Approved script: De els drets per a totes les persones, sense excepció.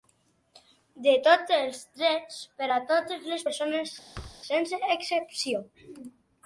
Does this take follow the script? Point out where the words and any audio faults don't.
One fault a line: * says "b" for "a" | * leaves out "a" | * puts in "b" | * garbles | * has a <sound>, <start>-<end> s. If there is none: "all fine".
* puts in "tots"
* has a thud, 4.1-4.4 s